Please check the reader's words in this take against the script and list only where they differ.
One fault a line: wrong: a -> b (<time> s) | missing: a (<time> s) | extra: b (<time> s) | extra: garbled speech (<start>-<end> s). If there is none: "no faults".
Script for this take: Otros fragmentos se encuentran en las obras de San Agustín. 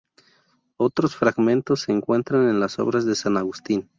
no faults